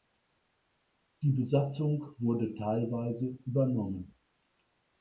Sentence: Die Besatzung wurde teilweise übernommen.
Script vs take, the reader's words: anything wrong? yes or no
no